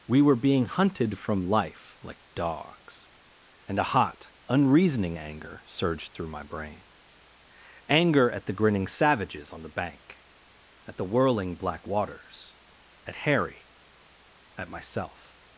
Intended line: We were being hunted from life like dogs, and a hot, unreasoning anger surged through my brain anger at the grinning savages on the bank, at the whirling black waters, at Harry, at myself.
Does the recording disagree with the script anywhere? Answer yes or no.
no